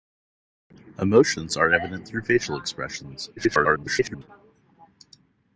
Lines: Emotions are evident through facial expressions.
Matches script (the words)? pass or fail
fail